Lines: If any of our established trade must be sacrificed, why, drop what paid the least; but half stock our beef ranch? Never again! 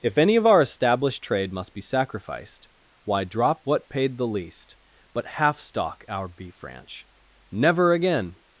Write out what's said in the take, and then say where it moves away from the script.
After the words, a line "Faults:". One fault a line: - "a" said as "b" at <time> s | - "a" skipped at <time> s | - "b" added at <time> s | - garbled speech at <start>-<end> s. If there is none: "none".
If any of our established trade must be sacrificed, why, drop what paid the least; but half stock our beef ranch? Never again!
Faults:
none